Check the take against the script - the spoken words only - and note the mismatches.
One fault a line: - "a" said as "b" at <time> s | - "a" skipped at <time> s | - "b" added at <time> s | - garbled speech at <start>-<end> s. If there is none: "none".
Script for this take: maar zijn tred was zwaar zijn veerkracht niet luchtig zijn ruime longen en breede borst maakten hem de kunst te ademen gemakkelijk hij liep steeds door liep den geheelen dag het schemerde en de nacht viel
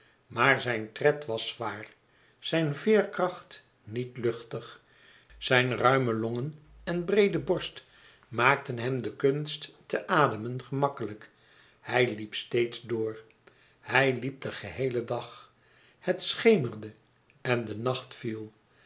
- "hij" added at 13.8 s